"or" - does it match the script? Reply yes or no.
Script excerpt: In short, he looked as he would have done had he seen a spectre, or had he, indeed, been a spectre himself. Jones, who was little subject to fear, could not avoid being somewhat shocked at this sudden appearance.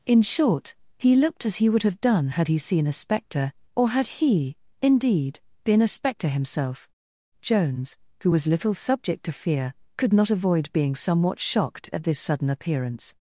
yes